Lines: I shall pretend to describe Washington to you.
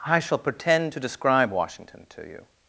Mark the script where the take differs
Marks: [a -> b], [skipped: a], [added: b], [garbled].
I shall pretend to describe Washington to you.